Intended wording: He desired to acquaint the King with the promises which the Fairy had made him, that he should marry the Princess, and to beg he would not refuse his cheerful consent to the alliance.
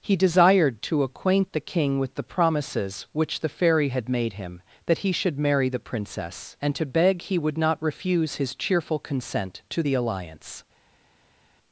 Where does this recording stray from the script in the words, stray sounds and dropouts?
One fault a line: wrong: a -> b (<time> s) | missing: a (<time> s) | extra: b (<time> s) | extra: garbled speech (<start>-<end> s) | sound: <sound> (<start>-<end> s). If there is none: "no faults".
no faults